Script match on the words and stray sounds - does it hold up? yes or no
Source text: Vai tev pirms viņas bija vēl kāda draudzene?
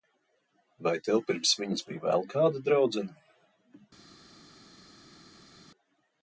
yes